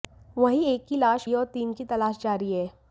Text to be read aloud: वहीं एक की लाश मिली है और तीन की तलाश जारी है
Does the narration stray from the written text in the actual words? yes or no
yes